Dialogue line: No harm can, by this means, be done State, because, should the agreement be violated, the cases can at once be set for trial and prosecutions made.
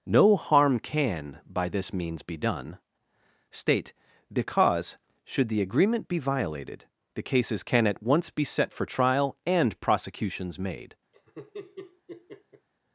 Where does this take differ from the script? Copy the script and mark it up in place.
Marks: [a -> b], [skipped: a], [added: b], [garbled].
No harm can, by this means, be done State, because, should the agreement be violated, the cases can at once be set for trial and prosecutions made.